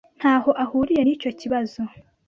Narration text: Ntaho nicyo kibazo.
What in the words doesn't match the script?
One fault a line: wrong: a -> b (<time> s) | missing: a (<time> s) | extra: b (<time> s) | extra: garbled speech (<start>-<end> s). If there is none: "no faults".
extra: ahuriye (0.6 s)